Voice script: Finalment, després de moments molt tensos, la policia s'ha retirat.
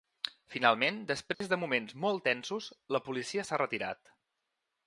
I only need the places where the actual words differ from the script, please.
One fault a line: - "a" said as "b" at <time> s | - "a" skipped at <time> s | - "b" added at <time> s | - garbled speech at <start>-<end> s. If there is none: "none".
none